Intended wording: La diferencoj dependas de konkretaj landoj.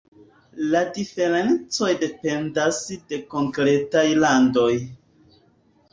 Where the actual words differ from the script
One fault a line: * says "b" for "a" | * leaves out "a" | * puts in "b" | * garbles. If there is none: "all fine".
all fine